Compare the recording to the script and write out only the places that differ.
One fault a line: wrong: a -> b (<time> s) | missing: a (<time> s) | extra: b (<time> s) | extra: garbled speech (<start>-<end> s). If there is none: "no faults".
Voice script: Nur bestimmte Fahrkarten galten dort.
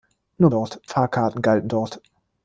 wrong: bestimmte -> dort (0.5 s)